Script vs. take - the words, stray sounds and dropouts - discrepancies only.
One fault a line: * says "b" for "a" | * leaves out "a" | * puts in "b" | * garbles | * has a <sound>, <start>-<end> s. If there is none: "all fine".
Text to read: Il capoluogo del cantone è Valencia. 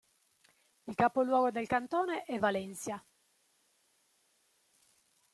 all fine